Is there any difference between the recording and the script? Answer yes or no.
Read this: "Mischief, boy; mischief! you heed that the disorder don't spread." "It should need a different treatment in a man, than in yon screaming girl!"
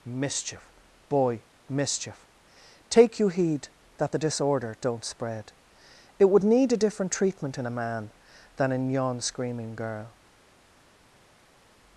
yes